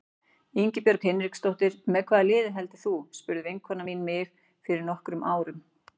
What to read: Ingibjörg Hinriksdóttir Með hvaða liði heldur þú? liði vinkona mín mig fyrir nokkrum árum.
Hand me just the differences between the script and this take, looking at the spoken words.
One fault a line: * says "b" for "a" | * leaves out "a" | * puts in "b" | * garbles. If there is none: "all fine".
* says "spurði" for "liði"